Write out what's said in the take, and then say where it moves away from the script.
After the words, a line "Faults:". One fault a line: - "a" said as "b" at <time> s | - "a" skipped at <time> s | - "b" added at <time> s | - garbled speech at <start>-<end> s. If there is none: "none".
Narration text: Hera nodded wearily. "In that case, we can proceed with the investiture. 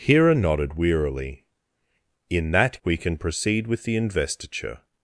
Hera nodded wearily. "In that we can proceed with the investiture.
Faults:
- "case" skipped at 2.8 s